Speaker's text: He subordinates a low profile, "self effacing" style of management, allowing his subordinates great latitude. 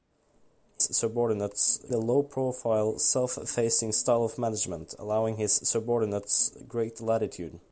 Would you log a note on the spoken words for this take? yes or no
no